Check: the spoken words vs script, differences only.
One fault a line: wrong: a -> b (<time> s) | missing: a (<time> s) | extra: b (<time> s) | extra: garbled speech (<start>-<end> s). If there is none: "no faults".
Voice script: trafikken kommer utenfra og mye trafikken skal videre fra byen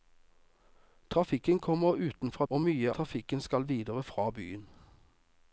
no faults